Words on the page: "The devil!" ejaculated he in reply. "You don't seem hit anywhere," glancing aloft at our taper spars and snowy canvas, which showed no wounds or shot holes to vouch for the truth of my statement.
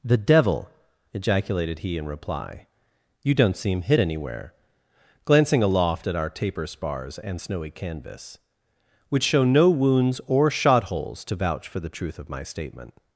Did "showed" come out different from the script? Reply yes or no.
yes